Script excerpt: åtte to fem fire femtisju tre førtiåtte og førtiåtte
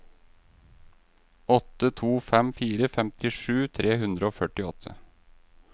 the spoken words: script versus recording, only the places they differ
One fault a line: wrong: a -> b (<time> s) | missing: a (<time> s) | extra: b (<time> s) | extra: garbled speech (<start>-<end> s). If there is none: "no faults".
wrong: førtiåtte -> hundre (4.1 s)